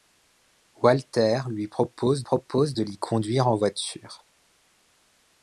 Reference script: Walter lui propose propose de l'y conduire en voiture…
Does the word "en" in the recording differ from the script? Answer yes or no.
no